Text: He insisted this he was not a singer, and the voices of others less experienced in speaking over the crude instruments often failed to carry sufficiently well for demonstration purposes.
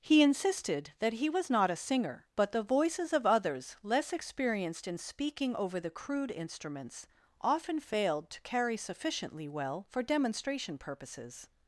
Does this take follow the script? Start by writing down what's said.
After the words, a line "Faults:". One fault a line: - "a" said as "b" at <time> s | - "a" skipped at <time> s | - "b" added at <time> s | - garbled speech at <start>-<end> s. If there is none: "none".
He insisted that he was not a singer, but the voices of others less experienced in speaking over the crude instruments often failed to carry sufficiently well for demonstration purposes.
Faults:
- "this" said as "that" at 1.0 s
- "and" said as "but" at 2.4 s